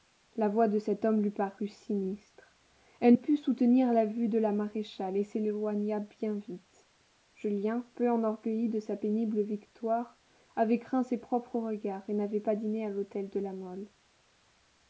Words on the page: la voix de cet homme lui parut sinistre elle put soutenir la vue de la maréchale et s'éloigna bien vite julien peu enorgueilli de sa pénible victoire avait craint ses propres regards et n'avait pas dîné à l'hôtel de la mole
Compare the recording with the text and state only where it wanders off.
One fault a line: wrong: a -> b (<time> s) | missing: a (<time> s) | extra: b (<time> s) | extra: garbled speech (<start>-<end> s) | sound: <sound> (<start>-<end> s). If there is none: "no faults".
no faults